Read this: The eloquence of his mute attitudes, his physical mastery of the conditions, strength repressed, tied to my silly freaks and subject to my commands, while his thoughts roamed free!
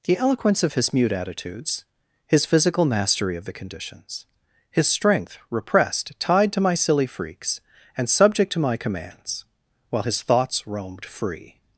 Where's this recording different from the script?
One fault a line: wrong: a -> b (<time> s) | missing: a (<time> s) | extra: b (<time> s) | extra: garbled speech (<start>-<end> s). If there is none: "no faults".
extra: his (4.7 s)